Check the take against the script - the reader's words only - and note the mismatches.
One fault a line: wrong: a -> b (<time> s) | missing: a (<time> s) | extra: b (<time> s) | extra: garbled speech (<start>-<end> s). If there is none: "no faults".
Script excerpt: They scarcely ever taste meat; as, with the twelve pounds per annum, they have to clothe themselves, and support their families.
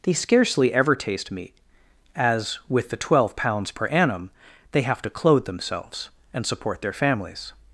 no faults